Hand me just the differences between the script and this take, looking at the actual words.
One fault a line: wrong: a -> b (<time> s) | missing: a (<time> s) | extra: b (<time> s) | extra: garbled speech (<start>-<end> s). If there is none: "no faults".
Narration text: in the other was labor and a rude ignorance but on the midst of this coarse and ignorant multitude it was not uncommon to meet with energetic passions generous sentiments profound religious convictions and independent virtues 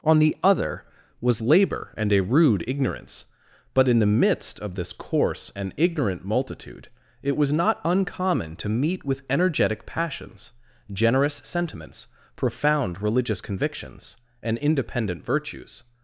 wrong: in -> on (0.0 s)
wrong: on -> in (3.9 s)